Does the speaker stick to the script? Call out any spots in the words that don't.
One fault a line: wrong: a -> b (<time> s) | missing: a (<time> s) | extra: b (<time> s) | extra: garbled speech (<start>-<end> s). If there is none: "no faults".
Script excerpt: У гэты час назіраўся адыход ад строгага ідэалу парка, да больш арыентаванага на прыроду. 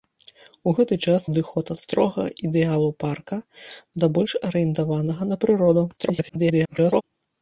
missing: назіраўся (1.3 s)
extra: garbled speech (6.0-7.0 s)